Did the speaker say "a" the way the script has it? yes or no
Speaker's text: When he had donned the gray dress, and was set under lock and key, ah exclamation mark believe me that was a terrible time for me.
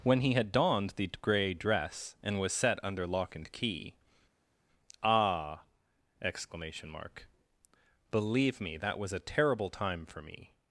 yes